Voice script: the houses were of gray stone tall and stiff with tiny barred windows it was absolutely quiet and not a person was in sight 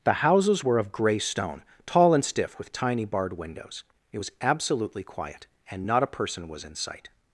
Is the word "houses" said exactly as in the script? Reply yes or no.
yes